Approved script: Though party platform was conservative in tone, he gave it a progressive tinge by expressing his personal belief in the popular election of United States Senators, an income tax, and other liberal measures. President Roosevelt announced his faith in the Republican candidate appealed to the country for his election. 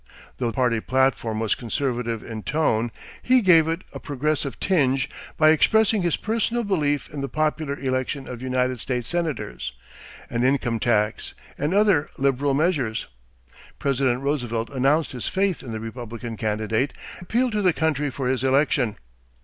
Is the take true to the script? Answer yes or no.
yes